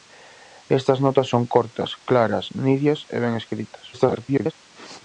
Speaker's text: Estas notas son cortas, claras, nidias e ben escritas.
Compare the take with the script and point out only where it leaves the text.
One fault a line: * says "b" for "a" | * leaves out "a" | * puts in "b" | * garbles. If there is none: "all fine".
* garbles